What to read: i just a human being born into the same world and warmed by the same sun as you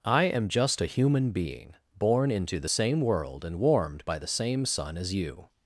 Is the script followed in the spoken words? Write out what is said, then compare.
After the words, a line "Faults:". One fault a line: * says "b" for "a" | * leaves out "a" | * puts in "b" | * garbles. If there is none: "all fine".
i am just a human being born into the same world and warmed by the same sun as you
Faults:
* puts in "am"